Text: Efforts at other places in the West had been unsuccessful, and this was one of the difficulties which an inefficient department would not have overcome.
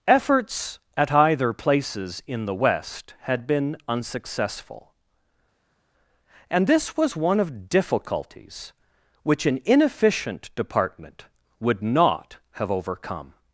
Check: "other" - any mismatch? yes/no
yes